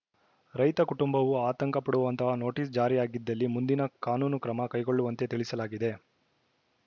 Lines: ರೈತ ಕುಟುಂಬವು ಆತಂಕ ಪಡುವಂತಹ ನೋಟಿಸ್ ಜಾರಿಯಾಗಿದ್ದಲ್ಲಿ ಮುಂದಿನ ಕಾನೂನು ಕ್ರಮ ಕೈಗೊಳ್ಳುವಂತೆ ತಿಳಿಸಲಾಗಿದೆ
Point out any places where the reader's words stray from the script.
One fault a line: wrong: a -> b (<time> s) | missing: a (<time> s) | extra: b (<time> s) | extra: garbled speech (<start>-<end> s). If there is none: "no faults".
no faults